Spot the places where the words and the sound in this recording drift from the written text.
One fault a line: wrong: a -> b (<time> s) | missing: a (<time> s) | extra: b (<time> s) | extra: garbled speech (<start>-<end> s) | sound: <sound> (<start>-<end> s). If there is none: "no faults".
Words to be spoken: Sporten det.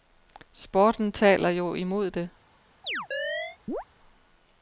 extra: taler jo imod (1.1 s)
sound: chirp (2.8-3.8 s)